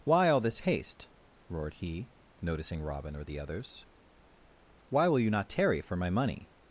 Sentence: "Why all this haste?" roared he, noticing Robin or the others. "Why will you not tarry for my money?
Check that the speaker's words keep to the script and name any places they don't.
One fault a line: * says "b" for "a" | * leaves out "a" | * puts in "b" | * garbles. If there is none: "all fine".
all fine